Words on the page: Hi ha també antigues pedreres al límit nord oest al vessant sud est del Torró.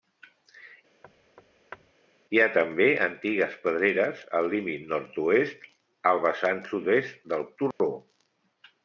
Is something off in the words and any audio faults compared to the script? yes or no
yes